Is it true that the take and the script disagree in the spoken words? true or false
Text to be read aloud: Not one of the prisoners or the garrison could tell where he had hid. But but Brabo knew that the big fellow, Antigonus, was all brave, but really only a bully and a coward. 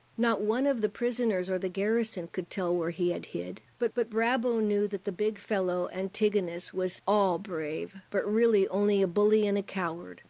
false